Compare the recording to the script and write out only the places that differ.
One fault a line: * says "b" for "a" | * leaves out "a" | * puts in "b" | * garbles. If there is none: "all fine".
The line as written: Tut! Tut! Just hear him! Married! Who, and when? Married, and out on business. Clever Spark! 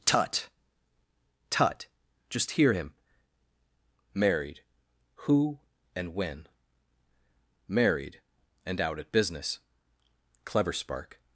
* says "at" for "on"